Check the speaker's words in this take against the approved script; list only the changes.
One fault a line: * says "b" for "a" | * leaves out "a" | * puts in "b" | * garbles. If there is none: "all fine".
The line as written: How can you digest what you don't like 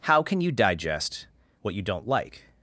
all fine